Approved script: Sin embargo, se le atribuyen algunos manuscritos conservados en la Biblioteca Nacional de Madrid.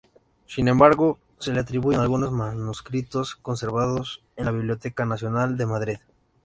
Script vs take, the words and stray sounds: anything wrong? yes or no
no